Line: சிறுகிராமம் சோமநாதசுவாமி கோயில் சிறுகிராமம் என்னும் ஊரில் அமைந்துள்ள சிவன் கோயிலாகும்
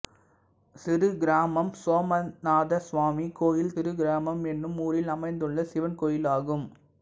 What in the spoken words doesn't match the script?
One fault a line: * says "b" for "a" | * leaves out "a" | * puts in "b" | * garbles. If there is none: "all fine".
all fine